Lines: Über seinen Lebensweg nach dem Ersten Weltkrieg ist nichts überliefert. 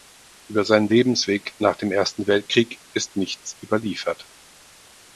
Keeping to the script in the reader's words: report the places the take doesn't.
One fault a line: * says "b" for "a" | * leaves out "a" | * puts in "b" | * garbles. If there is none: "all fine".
all fine